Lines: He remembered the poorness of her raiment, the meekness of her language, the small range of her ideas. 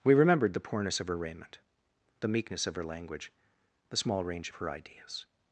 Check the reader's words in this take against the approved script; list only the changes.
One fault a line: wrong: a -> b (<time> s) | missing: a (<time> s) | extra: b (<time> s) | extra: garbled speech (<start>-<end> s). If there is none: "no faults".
wrong: He -> We (0.0 s)